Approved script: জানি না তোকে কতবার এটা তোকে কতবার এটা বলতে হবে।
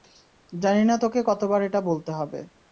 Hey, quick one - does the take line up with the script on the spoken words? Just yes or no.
no